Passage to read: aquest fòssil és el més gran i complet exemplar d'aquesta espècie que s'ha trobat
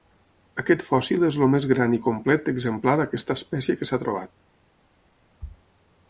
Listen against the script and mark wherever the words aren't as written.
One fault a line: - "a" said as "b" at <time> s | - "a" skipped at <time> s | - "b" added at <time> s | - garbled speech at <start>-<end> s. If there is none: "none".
none